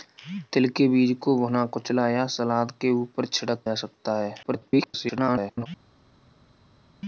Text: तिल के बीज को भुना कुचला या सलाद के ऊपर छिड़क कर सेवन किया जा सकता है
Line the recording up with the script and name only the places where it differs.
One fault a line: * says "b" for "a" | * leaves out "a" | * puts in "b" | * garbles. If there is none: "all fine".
* leaves out "कर सेवन किया"
* garbles